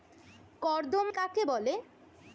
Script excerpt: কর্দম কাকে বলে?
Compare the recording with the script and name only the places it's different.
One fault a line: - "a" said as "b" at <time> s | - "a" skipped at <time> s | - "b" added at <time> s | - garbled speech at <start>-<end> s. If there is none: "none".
none